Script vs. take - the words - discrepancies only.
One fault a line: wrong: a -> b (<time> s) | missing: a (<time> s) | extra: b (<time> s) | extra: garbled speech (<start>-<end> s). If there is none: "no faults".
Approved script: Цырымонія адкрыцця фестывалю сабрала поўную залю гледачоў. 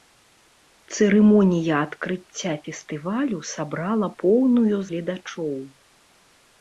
missing: залю (4.8 s)